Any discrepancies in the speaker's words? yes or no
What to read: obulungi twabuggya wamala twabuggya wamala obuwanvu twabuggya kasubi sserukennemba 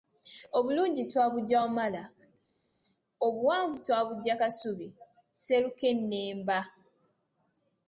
yes